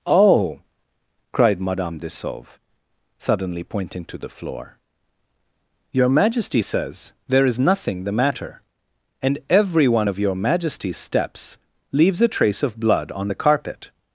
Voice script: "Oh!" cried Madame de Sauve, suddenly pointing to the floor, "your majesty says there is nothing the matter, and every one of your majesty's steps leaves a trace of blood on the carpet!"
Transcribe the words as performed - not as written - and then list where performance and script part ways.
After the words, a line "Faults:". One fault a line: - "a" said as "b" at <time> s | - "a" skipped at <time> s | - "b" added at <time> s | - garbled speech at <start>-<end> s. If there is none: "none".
"Oh!" cried Madame de Sauve, suddenly pointing to the floor, "your majesty says there is nothing the matter, and every one of your majesty's steps leaves a trace of blood on the carpet!"
Faults:
none